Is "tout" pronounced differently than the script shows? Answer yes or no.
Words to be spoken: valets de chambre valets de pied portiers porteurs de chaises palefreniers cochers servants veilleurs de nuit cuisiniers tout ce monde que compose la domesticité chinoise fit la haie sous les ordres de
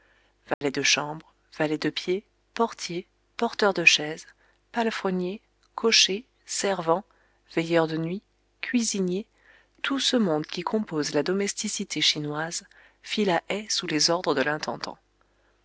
no